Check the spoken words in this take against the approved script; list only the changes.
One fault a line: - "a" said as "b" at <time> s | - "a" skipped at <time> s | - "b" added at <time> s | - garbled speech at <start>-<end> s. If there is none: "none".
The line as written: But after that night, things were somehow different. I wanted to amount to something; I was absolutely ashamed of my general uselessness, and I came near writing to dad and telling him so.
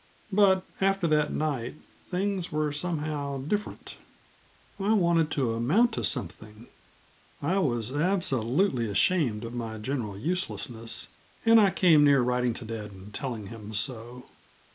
none